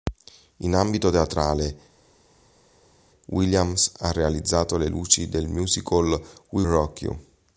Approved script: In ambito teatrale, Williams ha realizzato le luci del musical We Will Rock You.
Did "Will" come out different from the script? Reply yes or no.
yes